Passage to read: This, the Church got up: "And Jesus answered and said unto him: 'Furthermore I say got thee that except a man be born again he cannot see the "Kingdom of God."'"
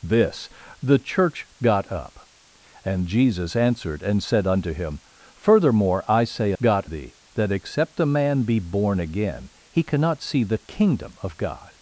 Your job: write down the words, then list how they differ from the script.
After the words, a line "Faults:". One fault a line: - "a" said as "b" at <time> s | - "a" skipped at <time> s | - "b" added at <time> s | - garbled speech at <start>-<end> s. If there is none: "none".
This, the Church got up: "And Jesus answered and said unto him: 'Furthermore I say got thee that except a man be born again he cannot see the "Kingdom of God."'"
Faults:
none